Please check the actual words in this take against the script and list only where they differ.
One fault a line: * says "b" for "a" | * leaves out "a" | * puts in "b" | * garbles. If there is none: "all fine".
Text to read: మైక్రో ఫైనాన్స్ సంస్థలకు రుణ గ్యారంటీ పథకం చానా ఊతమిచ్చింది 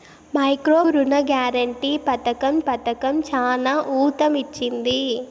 * leaves out "ఫైనాన్స్ సంస్థలకు"
* puts in "పథకం"